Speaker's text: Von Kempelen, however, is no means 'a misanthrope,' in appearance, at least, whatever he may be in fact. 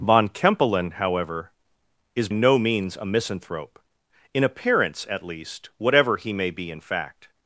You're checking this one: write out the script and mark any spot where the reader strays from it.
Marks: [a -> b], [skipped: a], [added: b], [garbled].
Von Kempelen, however, is no means 'a misanthrope,' in appearance, at least, whatever he may be in fact.